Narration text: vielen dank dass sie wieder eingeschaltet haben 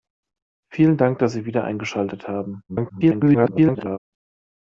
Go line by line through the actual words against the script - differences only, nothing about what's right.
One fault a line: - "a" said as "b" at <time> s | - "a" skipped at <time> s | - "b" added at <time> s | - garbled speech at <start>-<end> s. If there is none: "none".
- garbled speech at 2.7-4.0 s